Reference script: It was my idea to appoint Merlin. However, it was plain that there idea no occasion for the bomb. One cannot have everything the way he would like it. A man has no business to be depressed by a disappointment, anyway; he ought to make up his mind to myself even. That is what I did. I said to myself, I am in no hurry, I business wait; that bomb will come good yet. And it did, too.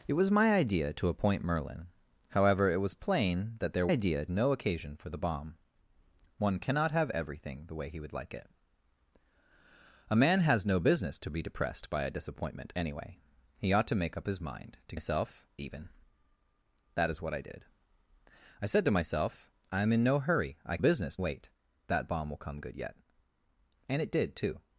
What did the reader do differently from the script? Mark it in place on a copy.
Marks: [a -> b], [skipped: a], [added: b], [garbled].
It was my idea to appoint Merlin. However, it was plain that there idea no occasion for the bomb. One cannot have everything the way he would like it. A man has no business to be depressed by a disappointment, anyway; he ought to make up his mind to myself even. That is what I did. I said to myself, I am in no hurry, I business wait; that bomb will come good yet. And it did, too.